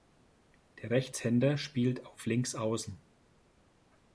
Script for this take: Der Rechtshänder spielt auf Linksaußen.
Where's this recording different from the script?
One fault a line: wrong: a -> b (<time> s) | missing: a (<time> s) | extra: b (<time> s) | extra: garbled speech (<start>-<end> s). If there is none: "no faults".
no faults